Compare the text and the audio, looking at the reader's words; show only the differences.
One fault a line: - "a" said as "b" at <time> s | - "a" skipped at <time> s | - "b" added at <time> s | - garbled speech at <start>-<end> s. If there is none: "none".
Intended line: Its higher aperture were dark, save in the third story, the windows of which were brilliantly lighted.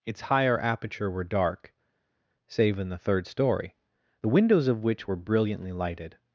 none